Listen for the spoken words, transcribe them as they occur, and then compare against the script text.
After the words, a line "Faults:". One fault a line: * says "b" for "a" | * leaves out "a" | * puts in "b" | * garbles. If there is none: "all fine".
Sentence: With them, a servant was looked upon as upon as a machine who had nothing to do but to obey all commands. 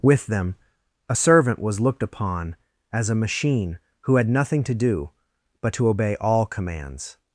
With them, a servant was looked upon as a machine who had nothing to do but to obey all commands.
Faults:
* leaves out "upon as"